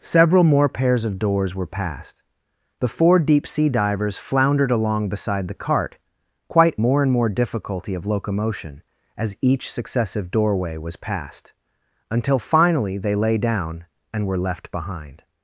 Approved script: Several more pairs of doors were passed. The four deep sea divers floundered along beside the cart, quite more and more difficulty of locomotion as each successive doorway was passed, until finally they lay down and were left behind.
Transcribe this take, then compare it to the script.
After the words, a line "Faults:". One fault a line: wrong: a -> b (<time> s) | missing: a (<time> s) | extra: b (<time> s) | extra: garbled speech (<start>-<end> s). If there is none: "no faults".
Several more pairs of doors were passed. The four deep sea divers floundered along beside the cart, quite more and more difficulty of locomotion as each successive doorway was passed, until finally they lay down and were left behind.
Faults:
no faults